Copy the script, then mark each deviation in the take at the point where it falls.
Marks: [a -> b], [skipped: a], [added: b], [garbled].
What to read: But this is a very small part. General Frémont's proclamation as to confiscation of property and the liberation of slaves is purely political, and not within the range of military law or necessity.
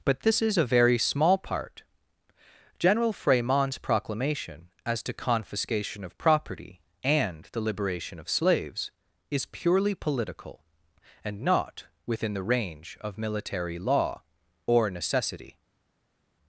But this is a very small part. General Frémont's proclamation as to confiscation of property and the liberation of slaves is purely political, and not within the range of military law or necessity.